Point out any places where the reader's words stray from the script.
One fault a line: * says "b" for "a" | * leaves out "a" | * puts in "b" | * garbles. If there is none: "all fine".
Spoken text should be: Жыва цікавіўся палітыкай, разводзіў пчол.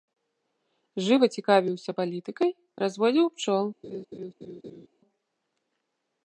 all fine